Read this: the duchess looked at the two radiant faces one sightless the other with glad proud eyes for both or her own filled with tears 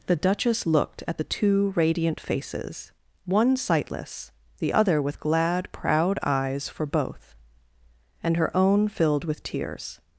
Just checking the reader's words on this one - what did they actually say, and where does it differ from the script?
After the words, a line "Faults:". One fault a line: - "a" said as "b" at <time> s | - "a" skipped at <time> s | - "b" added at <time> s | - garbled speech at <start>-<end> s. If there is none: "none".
the duchess looked at the two radiant faces one sightless the other with glad proud eyes for both and her own filled with tears
Faults:
- "or" said as "and" at 8.2 s